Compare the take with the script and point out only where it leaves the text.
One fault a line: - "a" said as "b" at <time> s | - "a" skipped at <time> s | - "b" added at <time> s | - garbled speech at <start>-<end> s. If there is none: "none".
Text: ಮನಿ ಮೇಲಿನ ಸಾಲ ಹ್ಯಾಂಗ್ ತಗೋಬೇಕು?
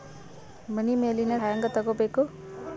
- "ಸಾಲ" skipped at 1.3 s